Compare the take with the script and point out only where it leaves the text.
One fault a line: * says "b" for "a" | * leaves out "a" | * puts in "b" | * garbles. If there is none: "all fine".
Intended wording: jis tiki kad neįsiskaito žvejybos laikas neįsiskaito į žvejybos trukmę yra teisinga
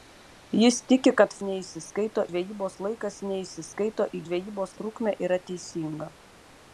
all fine